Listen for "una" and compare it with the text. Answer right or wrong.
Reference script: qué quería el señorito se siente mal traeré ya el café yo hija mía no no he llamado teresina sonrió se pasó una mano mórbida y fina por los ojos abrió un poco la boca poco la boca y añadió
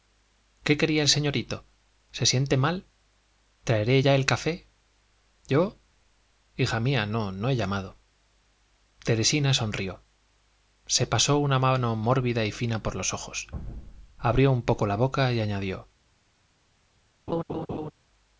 right